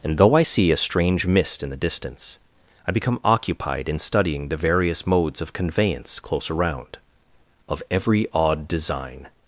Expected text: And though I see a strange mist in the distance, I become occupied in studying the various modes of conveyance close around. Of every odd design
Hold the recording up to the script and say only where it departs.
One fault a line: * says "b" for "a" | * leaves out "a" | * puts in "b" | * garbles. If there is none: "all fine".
all fine